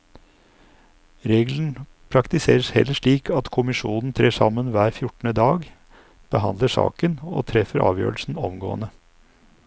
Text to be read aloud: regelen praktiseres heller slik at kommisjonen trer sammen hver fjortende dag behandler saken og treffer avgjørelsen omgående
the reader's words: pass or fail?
pass